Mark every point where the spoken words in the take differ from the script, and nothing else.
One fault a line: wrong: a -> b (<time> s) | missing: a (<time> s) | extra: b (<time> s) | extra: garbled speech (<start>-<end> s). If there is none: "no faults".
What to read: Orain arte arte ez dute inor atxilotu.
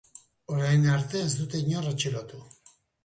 missing: arte (1.2 s)